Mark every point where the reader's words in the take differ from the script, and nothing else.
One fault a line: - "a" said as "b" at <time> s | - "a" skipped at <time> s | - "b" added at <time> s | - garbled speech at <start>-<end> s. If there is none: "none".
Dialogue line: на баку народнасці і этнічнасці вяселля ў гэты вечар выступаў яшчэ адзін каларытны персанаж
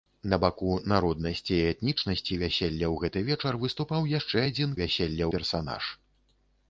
- "каларытны" said as "вяселля" at 4.8 s